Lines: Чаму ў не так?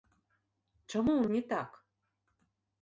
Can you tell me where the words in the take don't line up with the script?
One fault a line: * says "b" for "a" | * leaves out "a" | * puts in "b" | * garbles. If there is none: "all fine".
all fine